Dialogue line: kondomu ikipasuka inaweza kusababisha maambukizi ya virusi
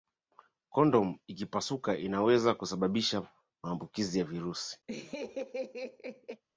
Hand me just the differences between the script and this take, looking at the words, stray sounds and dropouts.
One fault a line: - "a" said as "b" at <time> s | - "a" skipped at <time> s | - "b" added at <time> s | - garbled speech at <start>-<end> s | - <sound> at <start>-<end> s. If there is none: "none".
- laugh at 4.9-6.4 s